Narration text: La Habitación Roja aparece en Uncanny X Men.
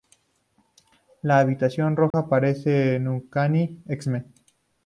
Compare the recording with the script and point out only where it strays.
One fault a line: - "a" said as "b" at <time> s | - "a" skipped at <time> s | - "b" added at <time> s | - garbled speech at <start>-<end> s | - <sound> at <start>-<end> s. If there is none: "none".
- dropout at 2.1-2.1 s